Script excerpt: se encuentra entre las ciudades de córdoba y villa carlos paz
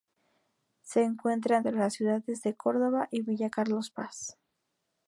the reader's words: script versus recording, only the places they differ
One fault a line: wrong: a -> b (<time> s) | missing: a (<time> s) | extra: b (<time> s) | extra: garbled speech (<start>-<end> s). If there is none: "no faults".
no faults